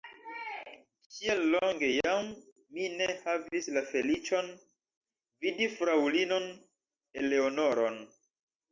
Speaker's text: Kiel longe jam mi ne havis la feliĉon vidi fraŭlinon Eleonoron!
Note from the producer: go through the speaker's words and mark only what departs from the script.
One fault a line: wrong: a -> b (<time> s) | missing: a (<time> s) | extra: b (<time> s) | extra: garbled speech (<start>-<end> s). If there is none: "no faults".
no faults